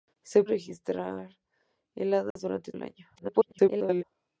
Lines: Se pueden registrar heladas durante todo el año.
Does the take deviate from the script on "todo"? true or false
true